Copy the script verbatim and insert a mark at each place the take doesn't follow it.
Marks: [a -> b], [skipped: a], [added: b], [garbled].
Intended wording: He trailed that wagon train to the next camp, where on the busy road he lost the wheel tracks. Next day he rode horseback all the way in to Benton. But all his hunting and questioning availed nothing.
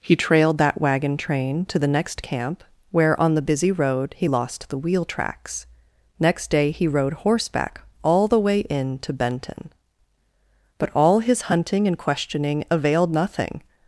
He trailed that wagon train to the next camp, where on the busy road he lost the wheel tracks. Next day he rode horseback all the way in to Benton. But all his hunting and questioning availed nothing.